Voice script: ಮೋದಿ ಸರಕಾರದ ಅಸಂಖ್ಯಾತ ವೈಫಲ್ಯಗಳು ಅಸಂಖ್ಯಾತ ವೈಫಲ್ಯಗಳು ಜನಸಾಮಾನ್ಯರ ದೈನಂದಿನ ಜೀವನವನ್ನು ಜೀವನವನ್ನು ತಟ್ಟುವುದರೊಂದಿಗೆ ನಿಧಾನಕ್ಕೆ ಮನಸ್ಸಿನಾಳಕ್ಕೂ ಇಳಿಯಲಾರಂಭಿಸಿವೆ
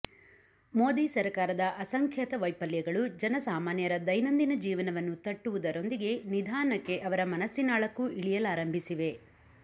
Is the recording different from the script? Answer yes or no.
yes